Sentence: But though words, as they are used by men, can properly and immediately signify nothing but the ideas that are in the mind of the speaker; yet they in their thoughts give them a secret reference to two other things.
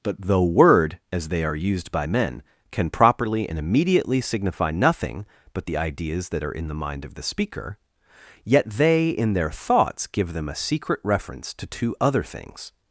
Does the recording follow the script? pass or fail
fail